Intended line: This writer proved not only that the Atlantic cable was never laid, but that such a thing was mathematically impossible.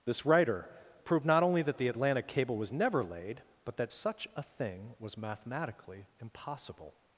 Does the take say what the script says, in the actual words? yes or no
yes